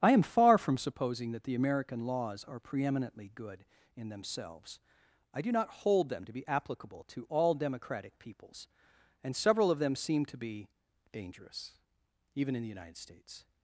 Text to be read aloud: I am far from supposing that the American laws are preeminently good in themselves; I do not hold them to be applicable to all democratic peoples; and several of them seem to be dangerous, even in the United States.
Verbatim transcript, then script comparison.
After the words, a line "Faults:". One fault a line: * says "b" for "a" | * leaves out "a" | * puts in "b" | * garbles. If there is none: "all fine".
I am far from supposing that the American laws are preeminently good in themselves; I do not hold them to be applicable to all democratic peoples; and several of them seem to be dangerous, even in the United States.
Faults:
all fine